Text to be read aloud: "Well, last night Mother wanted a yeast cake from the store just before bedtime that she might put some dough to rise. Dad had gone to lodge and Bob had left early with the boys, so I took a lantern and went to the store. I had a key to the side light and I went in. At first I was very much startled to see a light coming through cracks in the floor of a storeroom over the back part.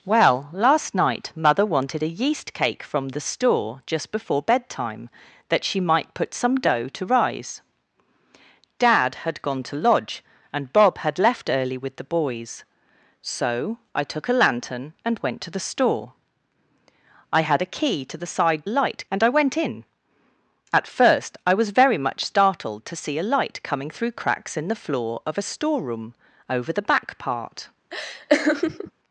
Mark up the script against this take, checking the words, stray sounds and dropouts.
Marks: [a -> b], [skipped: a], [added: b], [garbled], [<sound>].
"Well, last night Mother wanted a yeast cake from the store just before bedtime that she might put some dough to rise. Dad had gone to lodge and Bob had left early with the boys, so I took a lantern and went to the store. I had a key to the side light and I went in. At first I was very much startled to see a light coming through cracks in the floor of a storeroom over the back part. [laugh]